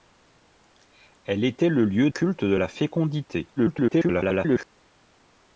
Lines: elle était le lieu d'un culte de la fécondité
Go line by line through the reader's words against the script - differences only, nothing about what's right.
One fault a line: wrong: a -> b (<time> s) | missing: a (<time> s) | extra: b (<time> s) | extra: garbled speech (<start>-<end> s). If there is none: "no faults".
missing: d'un (2.1 s)
extra: garbled speech (3.6-4.6 s)